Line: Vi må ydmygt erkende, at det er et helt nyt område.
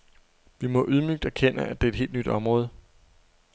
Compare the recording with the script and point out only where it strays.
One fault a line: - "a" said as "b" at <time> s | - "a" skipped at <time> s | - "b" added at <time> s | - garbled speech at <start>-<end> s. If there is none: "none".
none